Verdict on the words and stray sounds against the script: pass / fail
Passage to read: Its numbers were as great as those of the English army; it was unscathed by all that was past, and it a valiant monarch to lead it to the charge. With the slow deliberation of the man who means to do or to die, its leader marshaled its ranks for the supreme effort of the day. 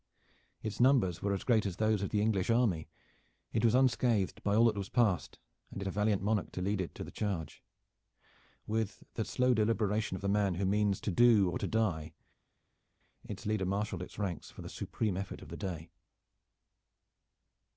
pass